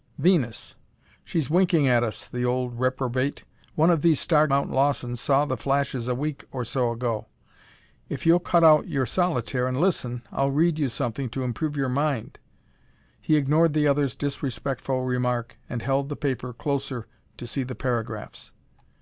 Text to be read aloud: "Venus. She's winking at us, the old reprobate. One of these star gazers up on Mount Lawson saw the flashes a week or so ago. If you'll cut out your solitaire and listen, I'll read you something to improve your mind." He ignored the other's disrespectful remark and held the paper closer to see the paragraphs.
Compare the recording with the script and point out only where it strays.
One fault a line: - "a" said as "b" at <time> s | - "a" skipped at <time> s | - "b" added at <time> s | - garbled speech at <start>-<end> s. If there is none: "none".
- "gazers up on" skipped at 4.5 s